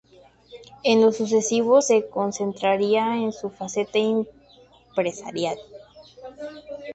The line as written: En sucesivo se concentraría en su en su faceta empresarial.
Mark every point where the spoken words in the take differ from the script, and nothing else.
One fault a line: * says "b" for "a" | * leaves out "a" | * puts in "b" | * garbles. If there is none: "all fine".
* puts in "lo"
* leaves out "en su"